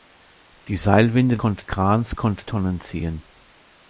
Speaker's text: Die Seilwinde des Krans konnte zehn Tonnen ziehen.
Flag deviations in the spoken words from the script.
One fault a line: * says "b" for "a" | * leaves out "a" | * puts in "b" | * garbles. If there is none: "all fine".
* says "konnte" for "des"
* leaves out "zehn"